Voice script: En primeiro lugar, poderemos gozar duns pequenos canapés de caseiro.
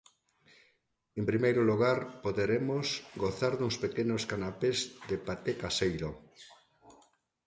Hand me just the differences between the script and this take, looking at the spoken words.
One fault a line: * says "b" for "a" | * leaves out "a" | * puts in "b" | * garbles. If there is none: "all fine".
* puts in "paté"